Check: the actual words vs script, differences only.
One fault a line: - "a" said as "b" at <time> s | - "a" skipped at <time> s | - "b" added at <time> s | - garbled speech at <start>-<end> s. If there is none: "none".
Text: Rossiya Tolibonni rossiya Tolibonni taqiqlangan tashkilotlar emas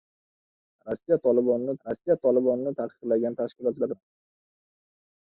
none